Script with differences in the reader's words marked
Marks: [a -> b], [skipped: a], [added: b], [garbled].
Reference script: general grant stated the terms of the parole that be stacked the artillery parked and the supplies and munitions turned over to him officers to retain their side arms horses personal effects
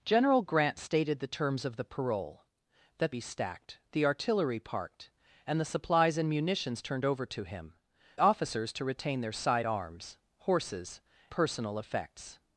general grant stated the terms of the parole that be stacked the artillery parked and the supplies and munitions turned over to him officers to retain their side arms horses personal effects